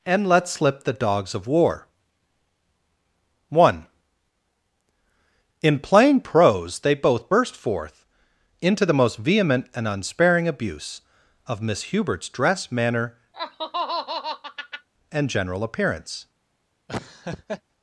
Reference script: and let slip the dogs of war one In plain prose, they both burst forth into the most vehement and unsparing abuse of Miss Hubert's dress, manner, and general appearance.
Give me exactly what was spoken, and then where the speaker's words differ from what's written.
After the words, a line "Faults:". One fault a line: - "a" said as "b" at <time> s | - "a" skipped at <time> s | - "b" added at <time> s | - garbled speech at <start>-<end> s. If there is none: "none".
and let slip the dogs of war one In plain prose, they both burst forth into the most vehement and unsparing abuse of Miss Hubert's dress, manner, and general appearance.
Faults:
none